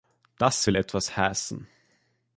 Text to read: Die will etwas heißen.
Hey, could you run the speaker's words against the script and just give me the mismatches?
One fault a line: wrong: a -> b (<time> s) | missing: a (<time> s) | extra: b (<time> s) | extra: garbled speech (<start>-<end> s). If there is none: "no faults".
wrong: Die -> Das (0.4 s)